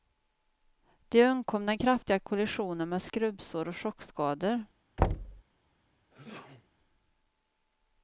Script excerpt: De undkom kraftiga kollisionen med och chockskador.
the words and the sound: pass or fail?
fail